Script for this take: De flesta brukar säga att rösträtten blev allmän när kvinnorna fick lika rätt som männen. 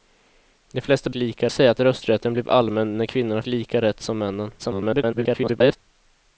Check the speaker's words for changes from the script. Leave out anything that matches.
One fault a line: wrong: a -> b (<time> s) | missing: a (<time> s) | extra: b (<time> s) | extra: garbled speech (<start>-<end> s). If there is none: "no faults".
wrong: brukar -> lika (1.1 s)
missing: fick (3.4 s)
extra: garbled speech (4.6-5.8 s)